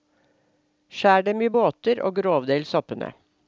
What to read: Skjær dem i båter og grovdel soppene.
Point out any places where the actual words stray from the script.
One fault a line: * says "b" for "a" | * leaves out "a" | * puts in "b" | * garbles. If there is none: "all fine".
all fine